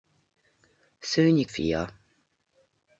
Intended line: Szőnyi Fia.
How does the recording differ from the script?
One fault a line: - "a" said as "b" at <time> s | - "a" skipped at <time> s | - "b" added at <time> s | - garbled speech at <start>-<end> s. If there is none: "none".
none